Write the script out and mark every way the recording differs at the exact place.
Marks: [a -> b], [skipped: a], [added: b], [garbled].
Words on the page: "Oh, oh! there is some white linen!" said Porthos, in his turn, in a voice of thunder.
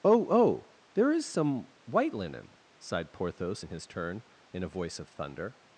"Oh, oh! there is some white linen!" [said -> sighed] Porthos, in his turn, in a voice of thunder.